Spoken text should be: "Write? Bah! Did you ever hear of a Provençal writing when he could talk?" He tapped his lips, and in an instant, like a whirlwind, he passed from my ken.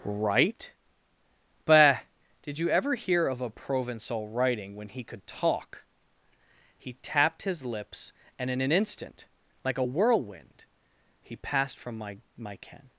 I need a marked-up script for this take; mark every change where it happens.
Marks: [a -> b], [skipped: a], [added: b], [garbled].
"Write? Bah! Did you ever hear of a Provençal writing when he could talk?" He tapped his lips, and in an instant, like a whirlwind, he passed from my [added: my] ken.